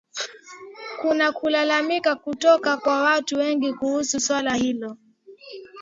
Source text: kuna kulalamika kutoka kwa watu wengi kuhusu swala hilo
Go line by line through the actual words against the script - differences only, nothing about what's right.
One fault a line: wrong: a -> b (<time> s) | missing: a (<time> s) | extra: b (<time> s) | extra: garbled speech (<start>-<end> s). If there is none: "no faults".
no faults